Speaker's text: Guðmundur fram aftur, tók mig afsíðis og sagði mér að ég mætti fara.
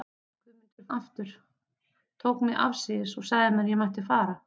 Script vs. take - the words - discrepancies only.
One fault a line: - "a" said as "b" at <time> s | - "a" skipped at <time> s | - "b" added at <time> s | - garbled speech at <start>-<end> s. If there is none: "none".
- "fram" skipped at 0.9 s